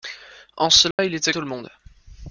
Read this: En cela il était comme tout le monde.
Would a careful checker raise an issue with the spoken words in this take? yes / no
yes